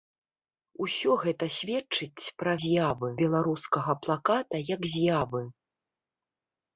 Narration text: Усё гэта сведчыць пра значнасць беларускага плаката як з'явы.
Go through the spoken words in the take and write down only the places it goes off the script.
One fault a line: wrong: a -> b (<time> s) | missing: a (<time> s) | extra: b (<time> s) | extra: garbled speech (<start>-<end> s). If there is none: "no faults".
wrong: значнасць -> з'явы (2.6 s)